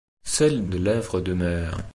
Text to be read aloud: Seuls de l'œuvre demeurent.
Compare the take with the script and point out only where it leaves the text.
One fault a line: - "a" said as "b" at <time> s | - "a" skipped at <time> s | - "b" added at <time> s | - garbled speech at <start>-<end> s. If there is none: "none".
none